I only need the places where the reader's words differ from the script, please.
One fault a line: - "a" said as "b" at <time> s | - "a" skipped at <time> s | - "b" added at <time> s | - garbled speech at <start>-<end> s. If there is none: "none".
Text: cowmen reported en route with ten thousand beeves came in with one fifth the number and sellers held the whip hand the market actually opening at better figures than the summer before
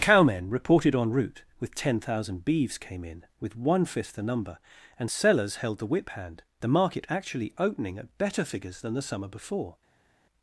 none